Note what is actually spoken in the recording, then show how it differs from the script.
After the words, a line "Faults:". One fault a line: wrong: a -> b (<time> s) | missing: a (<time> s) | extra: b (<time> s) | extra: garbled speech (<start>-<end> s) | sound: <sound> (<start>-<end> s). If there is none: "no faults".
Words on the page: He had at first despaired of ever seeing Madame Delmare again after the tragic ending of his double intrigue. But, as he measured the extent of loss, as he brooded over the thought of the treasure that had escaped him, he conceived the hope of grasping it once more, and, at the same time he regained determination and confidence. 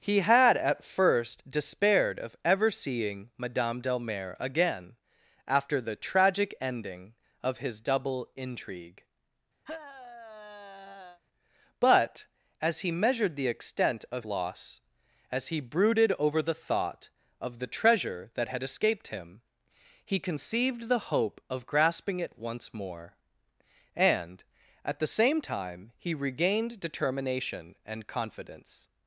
He had at first despaired of ever seeing Madame Delmare again after the tragic ending of his double intrigue. But, as he measured the extent of loss, as he brooded over the thought of the treasure that had escaped him, he conceived the hope of grasping it once more, and, at the same time he regained determination and confidence.
Faults:
sound: sigh (9.7-11.2 s)